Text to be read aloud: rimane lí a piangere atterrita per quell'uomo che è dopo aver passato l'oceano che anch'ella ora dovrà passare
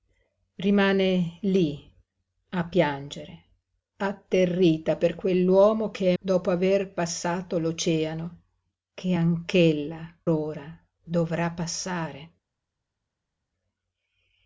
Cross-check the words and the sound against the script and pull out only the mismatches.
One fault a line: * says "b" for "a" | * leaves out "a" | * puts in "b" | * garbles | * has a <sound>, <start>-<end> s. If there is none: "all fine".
all fine